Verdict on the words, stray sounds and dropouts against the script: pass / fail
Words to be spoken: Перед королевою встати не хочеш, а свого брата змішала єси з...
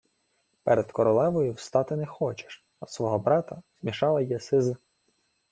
pass